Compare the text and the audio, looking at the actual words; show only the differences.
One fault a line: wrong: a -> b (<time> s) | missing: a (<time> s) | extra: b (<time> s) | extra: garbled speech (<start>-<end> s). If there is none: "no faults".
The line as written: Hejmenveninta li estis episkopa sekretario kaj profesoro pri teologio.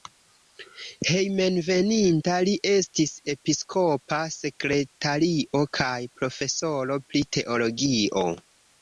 no faults